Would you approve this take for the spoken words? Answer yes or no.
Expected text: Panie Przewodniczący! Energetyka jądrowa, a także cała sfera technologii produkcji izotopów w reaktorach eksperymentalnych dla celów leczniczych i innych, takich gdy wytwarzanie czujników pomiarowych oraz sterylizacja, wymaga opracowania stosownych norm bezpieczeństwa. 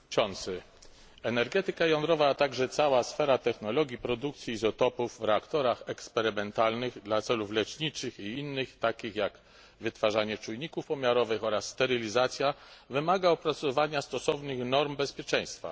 no